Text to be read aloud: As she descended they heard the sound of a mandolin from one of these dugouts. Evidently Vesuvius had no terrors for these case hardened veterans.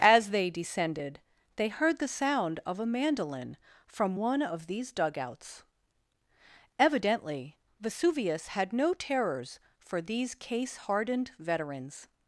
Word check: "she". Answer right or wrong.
wrong